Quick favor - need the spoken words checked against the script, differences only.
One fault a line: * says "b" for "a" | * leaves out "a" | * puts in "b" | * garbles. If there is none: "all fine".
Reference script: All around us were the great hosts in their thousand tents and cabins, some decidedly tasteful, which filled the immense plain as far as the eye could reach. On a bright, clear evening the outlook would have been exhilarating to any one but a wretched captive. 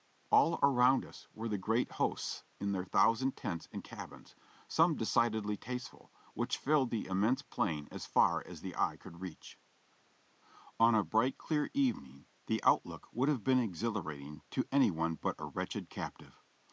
all fine